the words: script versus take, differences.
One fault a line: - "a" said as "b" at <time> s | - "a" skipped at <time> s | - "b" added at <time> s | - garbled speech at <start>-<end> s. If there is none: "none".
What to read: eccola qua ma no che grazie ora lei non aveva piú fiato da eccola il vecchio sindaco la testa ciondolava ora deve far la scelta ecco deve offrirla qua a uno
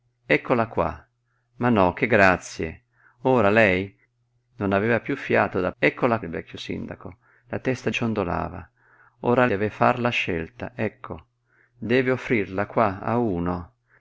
none